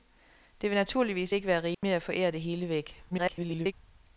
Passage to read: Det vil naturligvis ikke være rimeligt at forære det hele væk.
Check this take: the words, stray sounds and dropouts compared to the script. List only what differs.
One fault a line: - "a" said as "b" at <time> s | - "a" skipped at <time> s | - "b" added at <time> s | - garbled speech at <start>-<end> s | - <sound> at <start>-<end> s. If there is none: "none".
- dropout at 1.7-1.8 s
- garbled speech at 3.1-3.7 s